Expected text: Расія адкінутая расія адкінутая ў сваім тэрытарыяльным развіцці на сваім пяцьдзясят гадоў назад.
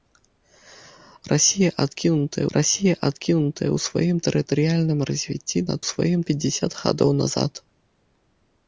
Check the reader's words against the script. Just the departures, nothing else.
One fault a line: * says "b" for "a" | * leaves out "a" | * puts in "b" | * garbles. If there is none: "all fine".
all fine